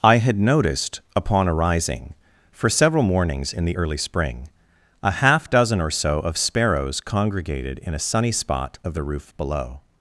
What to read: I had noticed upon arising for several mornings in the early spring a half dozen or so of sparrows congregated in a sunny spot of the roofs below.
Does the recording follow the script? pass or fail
fail